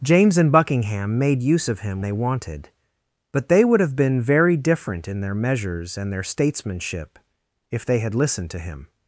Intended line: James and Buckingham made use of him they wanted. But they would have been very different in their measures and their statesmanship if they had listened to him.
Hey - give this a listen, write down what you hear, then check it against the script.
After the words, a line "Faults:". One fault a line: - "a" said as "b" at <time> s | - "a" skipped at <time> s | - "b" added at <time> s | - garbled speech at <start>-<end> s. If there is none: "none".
James and Buckingham made use of him they wanted. But they would have been very different in their measures and their statesmanship if they had listened to him.
Faults:
none